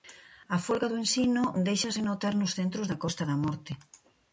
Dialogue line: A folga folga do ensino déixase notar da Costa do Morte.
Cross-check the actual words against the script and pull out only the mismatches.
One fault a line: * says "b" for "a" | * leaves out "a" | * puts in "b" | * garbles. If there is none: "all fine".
* leaves out "folga"
* puts in "nos centros"
* says "da" for "do"